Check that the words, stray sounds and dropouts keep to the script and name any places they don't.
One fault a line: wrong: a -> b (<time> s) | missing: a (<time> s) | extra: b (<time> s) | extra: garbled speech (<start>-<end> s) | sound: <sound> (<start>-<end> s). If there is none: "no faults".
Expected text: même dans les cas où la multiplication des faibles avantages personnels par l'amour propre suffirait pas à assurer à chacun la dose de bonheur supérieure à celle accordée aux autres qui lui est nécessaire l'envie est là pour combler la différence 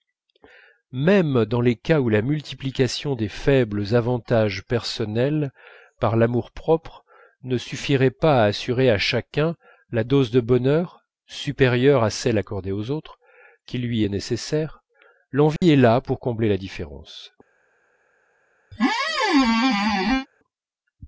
extra: ne (7.4 s)
sound: dropout (15.6-15.6 s)
sound: squeak (18.7-20.3 s)